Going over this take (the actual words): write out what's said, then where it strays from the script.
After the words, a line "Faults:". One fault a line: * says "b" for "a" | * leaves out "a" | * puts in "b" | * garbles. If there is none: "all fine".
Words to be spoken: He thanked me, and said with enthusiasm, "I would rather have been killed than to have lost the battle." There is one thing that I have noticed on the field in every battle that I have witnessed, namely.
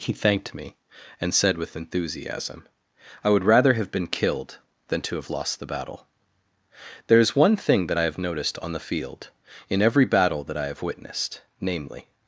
He thanked me, and said with enthusiasm, "I would rather have been killed than to have lost the battle." There is one thing that I have noticed on the field in every battle that I have witnessed, namely.
Faults:
all fine